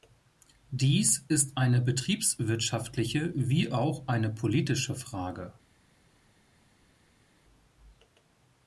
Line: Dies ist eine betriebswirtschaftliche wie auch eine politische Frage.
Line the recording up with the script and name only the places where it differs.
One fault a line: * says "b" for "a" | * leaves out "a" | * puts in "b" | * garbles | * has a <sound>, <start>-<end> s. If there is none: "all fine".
all fine